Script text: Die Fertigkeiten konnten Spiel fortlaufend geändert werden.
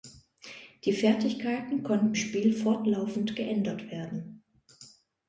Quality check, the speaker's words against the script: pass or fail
pass